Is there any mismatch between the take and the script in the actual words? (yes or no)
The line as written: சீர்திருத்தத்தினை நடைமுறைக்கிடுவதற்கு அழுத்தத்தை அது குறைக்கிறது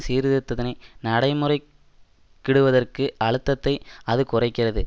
no